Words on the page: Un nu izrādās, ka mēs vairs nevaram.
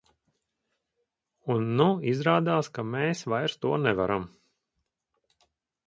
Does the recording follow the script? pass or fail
fail